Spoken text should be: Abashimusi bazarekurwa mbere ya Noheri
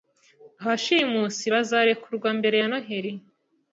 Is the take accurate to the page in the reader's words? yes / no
yes